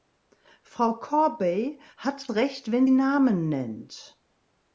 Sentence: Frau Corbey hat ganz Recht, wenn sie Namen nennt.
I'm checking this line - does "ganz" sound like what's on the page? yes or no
no